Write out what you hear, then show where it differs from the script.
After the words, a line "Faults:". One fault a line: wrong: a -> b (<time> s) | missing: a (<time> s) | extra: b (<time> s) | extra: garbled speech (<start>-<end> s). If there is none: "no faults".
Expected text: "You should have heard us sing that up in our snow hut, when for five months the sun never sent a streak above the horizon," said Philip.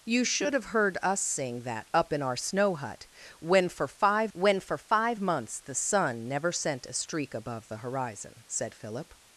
"You should have heard us sing that up in our snow hut, when for five when for five months the sun never sent a streak above the horizon," said Philip.
Faults:
extra: when for five (4.3 s)